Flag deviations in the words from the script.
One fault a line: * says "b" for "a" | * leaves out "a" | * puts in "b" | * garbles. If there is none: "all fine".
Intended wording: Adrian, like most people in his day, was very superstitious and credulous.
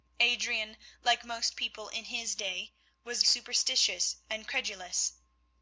* leaves out "very"